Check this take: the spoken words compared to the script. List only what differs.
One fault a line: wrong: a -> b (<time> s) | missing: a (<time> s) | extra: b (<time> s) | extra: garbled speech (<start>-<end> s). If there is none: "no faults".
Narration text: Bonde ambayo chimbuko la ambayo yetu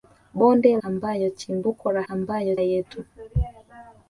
no faults